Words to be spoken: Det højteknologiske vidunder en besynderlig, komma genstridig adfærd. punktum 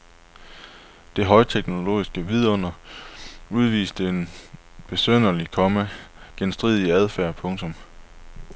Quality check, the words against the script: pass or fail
fail